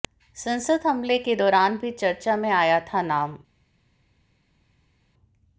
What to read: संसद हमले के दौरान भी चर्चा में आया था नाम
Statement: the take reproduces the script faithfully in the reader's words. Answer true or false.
true